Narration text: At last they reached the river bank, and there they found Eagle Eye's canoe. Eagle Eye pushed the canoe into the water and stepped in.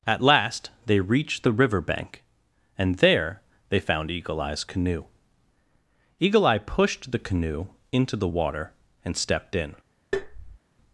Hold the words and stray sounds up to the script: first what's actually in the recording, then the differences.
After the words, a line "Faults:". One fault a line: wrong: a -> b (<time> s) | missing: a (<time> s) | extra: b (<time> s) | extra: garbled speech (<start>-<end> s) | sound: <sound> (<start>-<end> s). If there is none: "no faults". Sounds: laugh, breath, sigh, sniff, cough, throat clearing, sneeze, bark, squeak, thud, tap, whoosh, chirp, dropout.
At last they reached the river bank, and there they found Eagle Eye's canoe. Eagle Eye pushed the canoe into the water and stepped in.
Faults:
sound: tap (10.1-10.6 s)